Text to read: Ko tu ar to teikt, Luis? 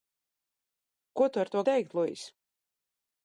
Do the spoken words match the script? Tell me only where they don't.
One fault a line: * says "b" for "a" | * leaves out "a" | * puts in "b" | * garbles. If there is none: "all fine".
all fine